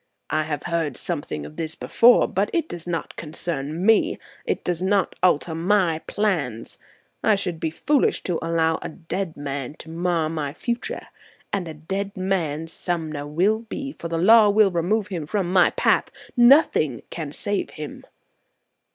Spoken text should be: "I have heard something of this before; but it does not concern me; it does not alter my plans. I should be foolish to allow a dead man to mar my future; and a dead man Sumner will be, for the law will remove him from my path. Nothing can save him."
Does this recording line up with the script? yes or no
yes